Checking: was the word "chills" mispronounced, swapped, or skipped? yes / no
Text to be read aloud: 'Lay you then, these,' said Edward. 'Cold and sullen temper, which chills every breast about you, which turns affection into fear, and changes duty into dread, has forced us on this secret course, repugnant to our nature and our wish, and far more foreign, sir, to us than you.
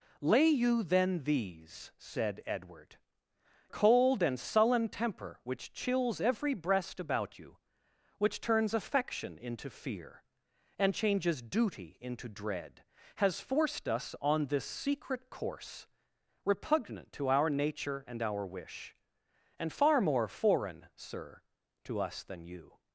no